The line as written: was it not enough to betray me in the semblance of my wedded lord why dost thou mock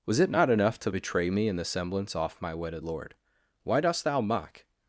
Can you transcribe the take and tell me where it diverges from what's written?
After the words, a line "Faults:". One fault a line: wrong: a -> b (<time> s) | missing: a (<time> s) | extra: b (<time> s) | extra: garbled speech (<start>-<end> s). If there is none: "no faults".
was it not enough to betray me in the semblance off my wedded lord why dost thou mock
Faults:
wrong: of -> off (2.1 s)